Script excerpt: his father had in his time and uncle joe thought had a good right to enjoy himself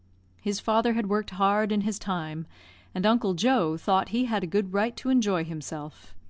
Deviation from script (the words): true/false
true